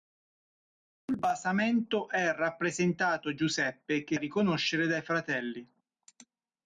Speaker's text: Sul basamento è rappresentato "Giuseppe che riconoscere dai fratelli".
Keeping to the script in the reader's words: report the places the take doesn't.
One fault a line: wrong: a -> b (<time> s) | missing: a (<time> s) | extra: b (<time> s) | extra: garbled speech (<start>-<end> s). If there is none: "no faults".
no faults